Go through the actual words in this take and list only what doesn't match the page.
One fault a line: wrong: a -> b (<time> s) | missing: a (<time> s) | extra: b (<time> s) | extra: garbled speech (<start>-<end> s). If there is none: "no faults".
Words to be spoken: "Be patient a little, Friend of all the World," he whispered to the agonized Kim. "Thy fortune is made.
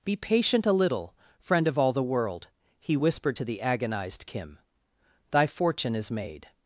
no faults